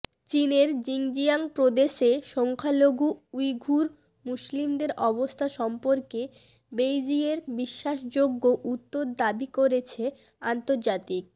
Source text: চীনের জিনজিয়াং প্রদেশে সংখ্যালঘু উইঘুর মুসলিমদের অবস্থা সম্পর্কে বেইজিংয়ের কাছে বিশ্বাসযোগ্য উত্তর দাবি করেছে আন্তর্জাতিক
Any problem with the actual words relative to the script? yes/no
yes